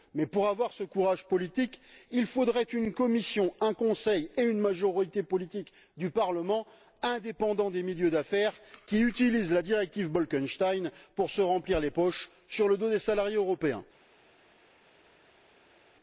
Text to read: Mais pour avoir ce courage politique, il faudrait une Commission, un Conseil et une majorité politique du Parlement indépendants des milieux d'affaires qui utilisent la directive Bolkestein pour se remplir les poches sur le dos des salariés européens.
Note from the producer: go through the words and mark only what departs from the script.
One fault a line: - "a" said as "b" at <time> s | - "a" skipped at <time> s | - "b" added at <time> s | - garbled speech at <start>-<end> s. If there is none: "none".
none